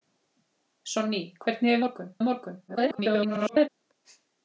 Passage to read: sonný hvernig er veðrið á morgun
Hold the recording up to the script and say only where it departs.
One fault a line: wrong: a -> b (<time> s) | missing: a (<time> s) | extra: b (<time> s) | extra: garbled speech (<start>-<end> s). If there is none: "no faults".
wrong: veðrið -> morgun (1.8 s)
extra: garbled speech (2.7-3.7 s)